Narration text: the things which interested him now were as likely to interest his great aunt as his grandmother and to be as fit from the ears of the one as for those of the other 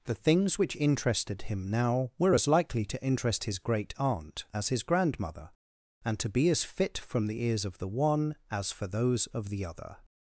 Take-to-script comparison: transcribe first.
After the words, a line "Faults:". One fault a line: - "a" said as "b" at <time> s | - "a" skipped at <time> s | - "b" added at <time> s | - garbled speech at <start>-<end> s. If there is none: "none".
the things which interested him now were as likely to interest his great aunt as his grandmother and to be as fit from the ears of the one as for those of the other
Faults:
none